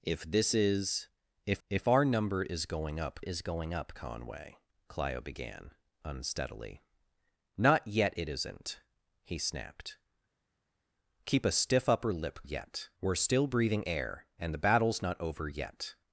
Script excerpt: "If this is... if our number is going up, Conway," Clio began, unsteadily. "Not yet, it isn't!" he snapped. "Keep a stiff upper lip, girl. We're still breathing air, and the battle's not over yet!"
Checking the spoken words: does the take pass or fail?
fail